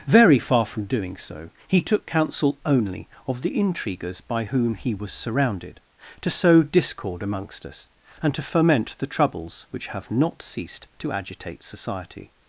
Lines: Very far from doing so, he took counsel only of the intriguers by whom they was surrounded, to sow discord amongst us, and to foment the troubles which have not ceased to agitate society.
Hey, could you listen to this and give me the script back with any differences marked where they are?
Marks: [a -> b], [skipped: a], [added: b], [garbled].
Very far from doing so, he took counsel only of the intriguers by whom [they -> he] was surrounded, to sow discord amongst us, and to foment the troubles which have not ceased to agitate society.